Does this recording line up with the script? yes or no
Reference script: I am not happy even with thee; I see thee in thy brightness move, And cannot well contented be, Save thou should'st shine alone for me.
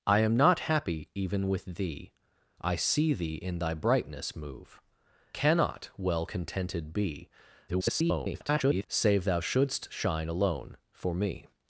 no